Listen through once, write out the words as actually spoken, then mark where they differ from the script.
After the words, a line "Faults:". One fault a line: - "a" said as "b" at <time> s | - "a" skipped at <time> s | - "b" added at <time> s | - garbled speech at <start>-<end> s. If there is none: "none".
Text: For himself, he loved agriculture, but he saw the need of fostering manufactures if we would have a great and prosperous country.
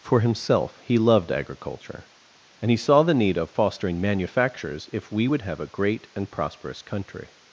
For himself, he loved agriculture, and he saw the need of fostering manufactures if we would have a great and prosperous country.
Faults:
- "but" said as "and" at 2.6 s